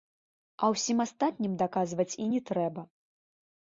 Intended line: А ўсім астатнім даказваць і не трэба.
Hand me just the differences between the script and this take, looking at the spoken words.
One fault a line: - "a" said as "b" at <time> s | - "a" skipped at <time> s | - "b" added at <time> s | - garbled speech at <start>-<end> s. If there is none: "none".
none